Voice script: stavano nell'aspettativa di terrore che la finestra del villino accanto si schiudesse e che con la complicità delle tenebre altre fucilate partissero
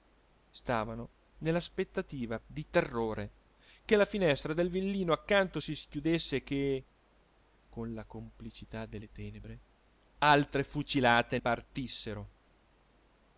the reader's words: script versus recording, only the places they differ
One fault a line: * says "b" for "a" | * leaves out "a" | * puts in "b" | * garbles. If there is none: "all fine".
all fine